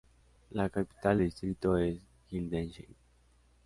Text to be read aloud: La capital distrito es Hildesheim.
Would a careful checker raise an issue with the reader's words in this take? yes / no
no